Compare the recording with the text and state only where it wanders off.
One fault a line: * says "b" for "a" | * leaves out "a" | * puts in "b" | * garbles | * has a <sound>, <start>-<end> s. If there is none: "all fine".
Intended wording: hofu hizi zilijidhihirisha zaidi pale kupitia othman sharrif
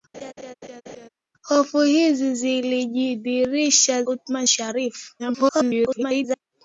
* has a laugh, 0.1-1.1 s
* leaves out "zaidi pale kupitia"
* garbles